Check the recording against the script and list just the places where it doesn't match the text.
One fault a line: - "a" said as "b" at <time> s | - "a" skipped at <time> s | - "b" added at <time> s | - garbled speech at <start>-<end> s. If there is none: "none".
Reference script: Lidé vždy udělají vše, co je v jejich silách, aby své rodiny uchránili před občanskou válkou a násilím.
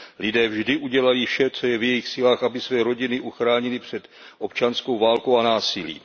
none